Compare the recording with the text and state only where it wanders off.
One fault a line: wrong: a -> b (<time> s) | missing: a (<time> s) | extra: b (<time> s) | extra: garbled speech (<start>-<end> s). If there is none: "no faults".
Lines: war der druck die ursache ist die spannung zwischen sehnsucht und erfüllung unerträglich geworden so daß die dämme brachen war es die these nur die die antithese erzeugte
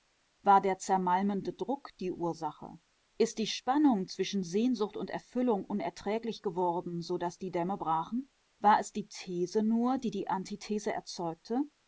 extra: zermalmende (0.8 s)